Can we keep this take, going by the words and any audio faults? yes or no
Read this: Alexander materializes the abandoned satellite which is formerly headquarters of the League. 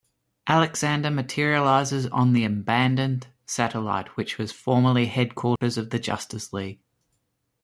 no